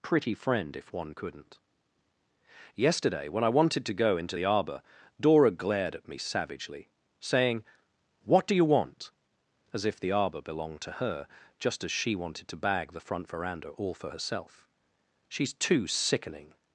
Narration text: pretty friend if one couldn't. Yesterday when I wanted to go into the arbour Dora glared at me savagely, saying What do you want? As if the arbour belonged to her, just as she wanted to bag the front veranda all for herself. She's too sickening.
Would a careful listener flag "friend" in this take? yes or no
no